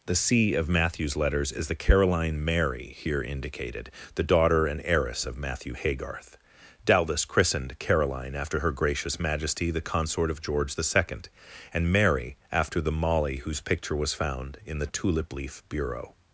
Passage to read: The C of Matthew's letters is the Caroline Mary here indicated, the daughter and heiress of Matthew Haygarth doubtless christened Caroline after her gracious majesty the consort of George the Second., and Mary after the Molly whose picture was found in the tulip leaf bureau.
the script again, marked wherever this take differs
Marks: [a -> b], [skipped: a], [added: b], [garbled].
The C of Matthew's letters is the Caroline Mary here indicated, the daughter and heiress of Matthew Haygarth doubtless christened Caroline after her gracious majesty the consort of George the Second., and Mary after the Molly whose picture was found in the tulip leaf bureau.